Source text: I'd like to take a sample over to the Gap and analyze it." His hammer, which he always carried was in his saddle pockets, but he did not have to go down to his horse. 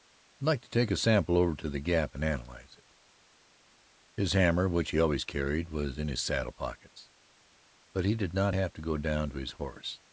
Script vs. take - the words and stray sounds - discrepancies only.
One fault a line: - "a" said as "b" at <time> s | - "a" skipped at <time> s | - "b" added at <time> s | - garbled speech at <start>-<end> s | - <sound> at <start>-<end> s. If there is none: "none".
none